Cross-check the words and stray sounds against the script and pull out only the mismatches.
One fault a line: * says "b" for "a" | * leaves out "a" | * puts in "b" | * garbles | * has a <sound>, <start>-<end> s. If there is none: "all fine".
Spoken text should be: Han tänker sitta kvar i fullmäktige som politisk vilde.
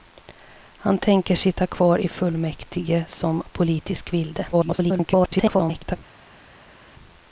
* garbles